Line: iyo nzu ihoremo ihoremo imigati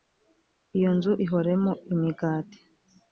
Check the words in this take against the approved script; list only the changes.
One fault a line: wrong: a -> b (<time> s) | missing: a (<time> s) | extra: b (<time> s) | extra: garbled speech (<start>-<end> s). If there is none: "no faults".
missing: ihoremo (1.7 s)